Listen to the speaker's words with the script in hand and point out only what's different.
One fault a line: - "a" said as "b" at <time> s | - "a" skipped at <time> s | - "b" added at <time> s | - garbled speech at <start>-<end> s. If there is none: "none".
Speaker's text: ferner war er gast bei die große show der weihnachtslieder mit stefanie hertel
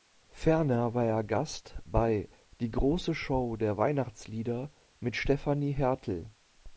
none